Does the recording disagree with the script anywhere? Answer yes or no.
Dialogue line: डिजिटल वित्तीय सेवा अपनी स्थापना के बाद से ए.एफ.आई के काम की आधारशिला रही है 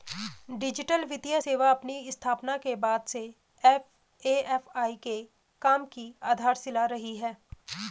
no